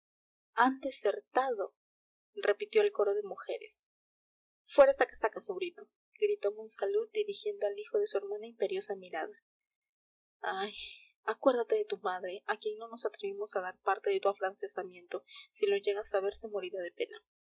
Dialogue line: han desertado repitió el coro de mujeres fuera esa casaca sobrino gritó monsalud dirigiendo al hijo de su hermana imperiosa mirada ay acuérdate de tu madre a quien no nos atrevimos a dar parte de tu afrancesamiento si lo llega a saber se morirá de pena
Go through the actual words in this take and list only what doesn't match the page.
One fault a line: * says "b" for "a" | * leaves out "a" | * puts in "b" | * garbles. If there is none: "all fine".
all fine